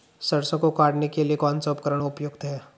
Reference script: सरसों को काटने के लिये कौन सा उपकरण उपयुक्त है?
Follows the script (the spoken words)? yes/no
yes